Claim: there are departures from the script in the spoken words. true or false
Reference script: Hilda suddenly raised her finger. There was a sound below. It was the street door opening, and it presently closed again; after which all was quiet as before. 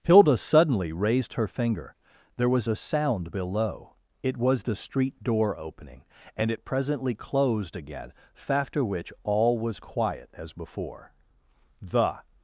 true